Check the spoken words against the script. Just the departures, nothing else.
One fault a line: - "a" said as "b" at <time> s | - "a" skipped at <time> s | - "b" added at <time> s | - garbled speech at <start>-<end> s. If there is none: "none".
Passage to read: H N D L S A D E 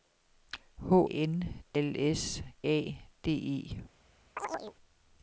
none